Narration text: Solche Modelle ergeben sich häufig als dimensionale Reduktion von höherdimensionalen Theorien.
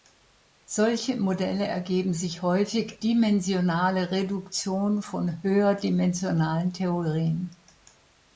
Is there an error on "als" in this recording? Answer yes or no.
yes